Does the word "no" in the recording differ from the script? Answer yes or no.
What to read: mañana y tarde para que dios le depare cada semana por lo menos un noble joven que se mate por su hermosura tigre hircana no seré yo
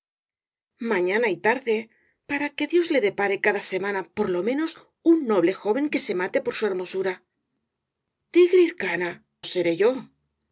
yes